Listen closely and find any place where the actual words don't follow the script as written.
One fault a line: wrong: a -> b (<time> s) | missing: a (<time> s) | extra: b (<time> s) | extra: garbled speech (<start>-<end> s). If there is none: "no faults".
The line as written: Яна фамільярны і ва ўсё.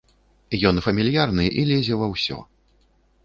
wrong: Яна -> Ён (0.7 s)
extra: лезе (1.7 s)